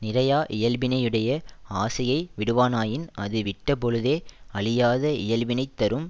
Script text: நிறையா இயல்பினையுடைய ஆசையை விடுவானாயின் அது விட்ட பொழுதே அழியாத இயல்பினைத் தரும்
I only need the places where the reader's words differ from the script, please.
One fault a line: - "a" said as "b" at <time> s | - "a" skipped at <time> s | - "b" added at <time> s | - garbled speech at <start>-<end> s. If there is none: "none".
none